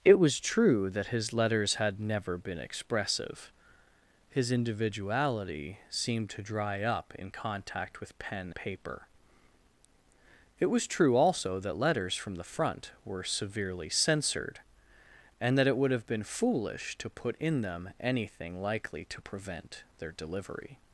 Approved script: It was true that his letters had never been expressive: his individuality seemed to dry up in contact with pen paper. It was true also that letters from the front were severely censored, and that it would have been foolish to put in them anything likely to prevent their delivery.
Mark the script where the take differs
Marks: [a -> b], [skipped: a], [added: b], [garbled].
It was true that his letters had never been expressive: his individuality seemed to dry up in contact with pen paper. It was true also that letters from the front were severely censored, and that it would have been foolish to put in them anything likely to prevent their delivery.